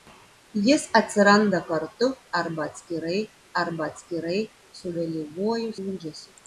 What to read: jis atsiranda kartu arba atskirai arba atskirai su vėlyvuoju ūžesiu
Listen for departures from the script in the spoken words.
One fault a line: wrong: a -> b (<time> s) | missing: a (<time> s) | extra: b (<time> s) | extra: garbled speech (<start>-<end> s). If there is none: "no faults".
no faults